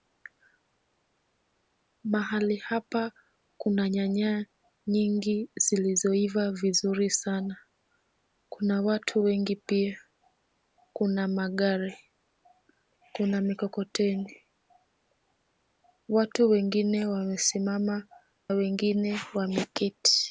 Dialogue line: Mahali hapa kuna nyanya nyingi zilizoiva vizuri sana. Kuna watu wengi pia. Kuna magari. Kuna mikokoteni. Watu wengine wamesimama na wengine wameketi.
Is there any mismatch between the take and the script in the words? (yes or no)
yes